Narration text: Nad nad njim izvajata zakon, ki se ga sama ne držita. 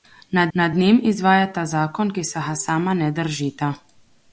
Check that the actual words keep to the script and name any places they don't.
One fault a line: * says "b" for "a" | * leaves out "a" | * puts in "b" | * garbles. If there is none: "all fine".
all fine